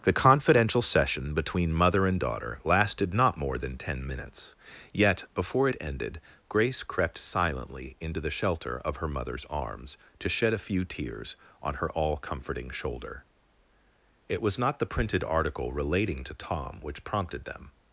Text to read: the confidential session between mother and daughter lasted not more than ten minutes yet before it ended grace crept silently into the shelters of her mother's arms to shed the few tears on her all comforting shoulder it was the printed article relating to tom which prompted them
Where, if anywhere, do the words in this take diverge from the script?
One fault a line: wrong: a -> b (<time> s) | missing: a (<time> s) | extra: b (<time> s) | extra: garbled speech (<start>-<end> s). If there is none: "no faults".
wrong: shelters -> shelter (8.3 s)
wrong: the -> a (10.5 s)
extra: not (14.6 s)